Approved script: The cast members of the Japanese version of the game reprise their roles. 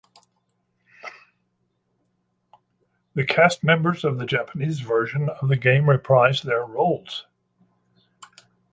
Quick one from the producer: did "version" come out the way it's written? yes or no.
yes